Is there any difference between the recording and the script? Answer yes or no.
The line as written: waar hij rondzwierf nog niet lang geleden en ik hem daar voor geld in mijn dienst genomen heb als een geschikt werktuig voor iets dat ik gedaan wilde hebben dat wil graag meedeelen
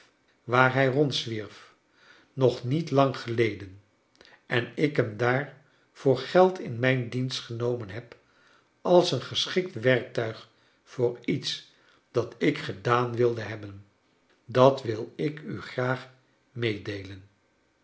yes